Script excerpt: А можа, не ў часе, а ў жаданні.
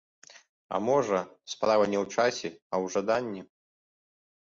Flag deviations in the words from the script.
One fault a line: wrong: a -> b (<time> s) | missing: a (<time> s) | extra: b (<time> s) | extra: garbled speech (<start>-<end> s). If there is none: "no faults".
extra: справа (1.5 s)